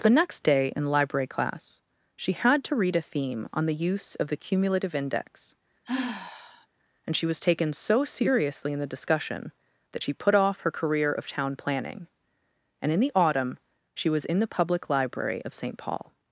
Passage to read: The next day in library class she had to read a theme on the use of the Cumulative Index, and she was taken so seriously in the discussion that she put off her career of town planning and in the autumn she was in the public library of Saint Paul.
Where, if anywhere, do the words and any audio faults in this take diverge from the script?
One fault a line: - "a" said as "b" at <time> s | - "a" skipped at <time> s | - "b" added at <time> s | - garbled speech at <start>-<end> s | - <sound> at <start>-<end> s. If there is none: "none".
- sigh at 5.8-6.7 s